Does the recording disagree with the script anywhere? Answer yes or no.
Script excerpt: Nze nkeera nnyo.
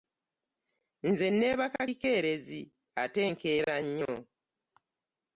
yes